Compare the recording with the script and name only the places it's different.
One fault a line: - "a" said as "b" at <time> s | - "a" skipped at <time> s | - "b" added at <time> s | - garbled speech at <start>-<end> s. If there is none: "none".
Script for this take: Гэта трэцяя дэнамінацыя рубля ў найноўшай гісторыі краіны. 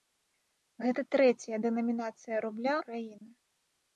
- "ў найноўшай гісторыі" skipped at 2.8 s